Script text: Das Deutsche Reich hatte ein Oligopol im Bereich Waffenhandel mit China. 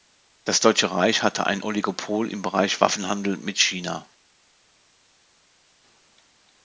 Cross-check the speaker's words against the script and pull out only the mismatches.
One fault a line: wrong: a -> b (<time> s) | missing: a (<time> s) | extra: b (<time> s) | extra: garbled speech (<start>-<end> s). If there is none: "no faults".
no faults